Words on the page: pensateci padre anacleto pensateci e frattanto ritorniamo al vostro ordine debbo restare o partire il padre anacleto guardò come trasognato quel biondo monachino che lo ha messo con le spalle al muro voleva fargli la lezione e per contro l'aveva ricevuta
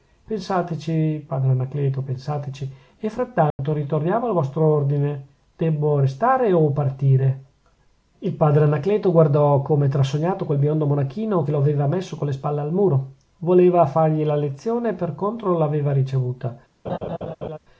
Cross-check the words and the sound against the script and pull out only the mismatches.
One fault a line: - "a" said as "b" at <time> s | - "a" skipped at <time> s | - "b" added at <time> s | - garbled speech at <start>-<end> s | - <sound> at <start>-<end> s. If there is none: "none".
- dropout at 3.5-3.6 s
- "ha" said as "aveva" at 11.6 s
- laugh at 16.8-17.6 s